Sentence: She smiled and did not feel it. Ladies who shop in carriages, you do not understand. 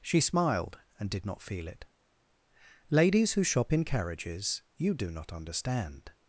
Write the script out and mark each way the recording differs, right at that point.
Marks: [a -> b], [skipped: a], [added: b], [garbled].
She smiled and did not feel it. Ladies who shop in carriages, you do not understand.